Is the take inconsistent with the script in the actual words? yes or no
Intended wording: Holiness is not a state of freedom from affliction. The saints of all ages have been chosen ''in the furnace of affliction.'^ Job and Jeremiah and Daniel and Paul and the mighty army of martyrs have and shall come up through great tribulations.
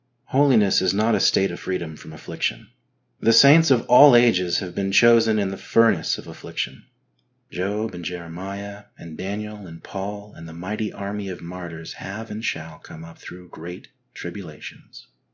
no